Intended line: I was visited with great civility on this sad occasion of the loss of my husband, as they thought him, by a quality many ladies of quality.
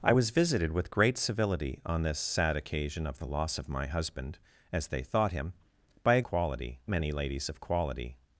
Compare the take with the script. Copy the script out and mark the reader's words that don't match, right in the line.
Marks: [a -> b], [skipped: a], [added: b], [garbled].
I was visited with great civility on this sad occasion of the loss of my husband, as they thought him, by a quality many ladies of quality.